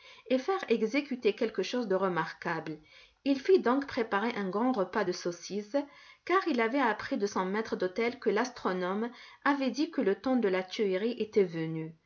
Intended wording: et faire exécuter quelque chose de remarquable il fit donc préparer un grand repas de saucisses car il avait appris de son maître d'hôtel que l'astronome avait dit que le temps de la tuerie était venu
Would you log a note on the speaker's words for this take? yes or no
no